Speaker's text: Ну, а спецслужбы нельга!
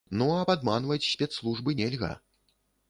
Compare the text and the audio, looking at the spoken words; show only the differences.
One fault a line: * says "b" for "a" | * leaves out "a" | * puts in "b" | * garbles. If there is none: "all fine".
* puts in "падманваць"